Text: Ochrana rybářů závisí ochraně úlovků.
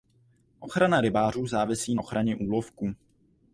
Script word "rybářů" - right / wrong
right